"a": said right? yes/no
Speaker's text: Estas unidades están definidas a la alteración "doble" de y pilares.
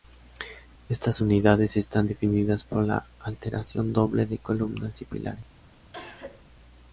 no